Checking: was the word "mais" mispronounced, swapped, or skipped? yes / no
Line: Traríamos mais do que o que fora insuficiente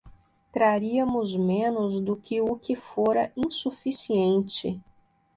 yes